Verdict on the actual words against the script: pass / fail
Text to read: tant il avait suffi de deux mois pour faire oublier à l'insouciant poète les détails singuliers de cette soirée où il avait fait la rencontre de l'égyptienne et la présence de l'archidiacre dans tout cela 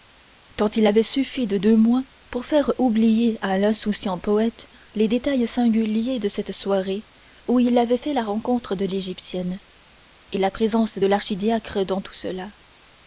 pass